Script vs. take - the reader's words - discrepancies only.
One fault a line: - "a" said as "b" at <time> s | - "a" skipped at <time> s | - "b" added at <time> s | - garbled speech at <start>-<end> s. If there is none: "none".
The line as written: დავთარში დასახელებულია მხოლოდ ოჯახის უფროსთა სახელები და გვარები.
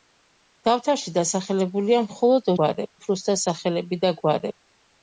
- "ოჯახის" said as "გვარები" at 2.6 s